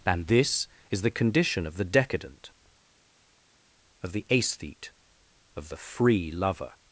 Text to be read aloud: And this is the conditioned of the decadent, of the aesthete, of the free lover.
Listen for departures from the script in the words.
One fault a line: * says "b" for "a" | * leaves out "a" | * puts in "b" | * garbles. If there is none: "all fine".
* says "condition" for "conditioned"